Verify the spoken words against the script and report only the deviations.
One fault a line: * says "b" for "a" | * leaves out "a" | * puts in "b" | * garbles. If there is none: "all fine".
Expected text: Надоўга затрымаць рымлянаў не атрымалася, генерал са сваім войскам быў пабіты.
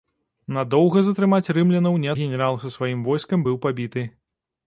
* leaves out "атрымалася"